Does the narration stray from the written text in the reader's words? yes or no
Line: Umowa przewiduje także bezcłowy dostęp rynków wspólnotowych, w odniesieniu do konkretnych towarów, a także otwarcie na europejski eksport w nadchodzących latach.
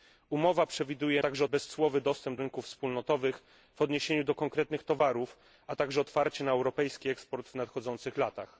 no